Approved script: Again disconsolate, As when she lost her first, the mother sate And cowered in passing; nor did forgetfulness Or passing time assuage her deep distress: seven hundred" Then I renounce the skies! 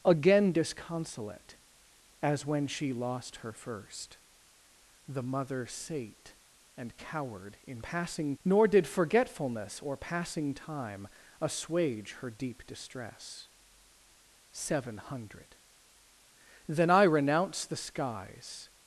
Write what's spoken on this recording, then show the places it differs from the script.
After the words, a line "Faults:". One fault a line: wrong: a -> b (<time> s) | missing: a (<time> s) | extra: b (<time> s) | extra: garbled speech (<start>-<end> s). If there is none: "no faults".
Again disconsolate, As when she lost her first, the mother sate And cowered in passing; nor did forgetfulness Or passing time assuage her deep distress: seven hundred" Then I renounce the skies!
Faults:
no faults